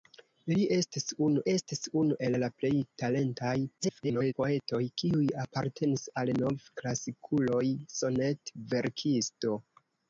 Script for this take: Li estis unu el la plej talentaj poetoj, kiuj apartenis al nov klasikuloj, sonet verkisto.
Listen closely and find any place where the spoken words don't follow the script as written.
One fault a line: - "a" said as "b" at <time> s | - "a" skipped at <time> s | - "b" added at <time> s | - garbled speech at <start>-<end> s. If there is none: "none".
- "estis unu" added at 1.5 s
- garbled speech at 3.8-4.3 s